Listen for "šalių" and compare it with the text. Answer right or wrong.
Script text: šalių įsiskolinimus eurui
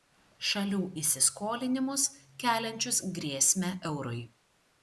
right